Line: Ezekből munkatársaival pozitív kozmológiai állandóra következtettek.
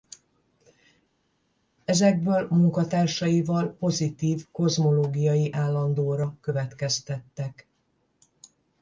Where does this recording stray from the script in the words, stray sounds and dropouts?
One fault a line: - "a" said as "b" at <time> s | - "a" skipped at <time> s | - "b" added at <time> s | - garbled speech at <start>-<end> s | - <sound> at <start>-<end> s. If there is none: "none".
none